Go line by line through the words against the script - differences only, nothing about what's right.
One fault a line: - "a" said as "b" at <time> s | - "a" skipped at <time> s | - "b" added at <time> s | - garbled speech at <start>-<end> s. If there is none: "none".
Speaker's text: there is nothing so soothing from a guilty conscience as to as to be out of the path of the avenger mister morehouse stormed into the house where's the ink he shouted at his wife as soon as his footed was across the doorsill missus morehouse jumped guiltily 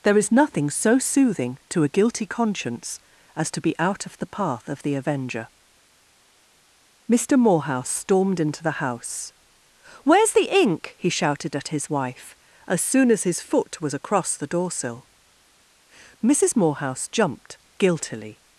- "from" said as "to" at 1.7 s
- "as to" skipped at 3.6 s
- "footed" said as "foot" at 13.4 s